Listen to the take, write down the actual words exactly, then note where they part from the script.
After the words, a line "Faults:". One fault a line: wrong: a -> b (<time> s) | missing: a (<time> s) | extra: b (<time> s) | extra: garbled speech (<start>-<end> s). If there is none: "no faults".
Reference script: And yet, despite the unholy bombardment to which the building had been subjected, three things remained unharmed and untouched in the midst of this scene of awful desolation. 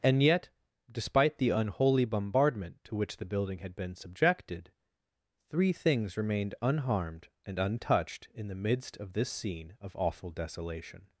And yet, despite the unholy bombardment to which the building had been subjected, three things remained unharmed and untouched in the midst of this scene of awful desolation.
Faults:
no faults